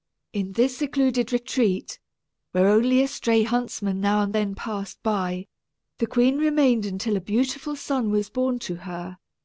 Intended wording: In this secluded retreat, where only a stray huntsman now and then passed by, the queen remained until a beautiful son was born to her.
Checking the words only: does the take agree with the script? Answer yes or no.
yes